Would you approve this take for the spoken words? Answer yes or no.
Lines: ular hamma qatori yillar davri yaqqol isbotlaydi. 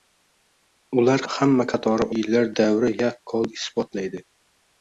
yes